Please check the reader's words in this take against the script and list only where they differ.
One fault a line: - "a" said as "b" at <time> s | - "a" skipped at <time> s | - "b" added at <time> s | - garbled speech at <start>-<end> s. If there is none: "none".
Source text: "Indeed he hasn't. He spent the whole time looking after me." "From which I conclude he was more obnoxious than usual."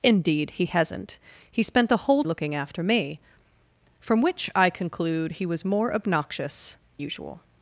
- "time" skipped at 2.2 s
- "than" skipped at 6.8 s